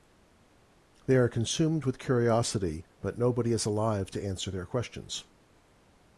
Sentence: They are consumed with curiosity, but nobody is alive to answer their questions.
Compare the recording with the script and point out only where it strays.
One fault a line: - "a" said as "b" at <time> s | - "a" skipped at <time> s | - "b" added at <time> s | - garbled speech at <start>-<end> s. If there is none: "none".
none